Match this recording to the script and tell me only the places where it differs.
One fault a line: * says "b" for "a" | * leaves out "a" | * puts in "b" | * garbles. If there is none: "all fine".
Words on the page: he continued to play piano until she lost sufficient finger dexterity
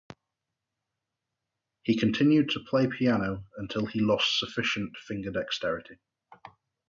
* says "he" for "she"